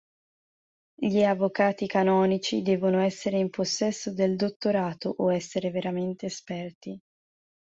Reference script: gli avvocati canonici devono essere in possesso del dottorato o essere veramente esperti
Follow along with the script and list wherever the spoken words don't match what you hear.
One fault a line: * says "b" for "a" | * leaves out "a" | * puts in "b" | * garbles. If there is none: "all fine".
all fine